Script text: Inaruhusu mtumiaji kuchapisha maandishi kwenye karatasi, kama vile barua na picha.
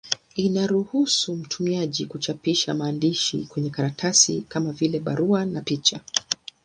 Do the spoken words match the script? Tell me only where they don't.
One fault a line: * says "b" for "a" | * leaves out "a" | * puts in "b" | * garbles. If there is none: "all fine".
all fine